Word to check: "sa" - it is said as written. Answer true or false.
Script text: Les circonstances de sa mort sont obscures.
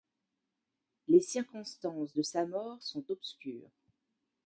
true